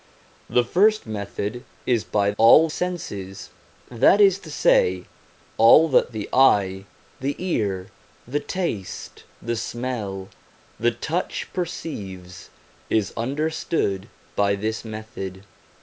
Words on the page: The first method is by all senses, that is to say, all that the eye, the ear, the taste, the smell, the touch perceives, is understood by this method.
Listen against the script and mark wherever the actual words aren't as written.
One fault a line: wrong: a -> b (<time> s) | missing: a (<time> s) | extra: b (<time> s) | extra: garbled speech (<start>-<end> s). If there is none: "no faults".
no faults